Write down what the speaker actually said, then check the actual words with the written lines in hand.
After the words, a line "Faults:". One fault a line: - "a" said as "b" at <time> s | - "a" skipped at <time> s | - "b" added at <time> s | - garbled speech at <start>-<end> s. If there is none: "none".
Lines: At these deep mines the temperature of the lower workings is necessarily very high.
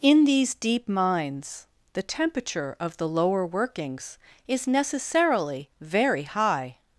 In these deep mines the temperature of the lower workings is necessarily very high.
Faults:
- "At" said as "In" at 0.0 s